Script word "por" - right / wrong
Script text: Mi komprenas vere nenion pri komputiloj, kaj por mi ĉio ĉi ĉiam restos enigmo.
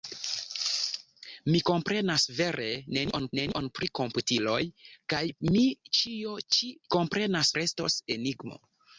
wrong